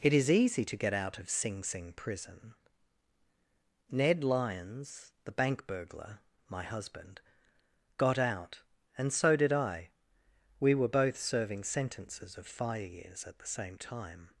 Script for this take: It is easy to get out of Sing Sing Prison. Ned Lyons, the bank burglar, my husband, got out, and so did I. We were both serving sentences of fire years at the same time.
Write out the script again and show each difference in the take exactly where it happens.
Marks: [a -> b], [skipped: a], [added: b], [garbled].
It is easy to get out of Sing Sing Prison. Ned Lyons, the bank burglar, my husband, got out, and so did I. We were both serving sentences of fire years at the same time.